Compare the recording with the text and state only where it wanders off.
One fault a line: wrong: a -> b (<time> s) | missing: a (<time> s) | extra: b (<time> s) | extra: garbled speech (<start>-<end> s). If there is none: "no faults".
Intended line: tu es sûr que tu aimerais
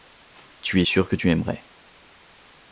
no faults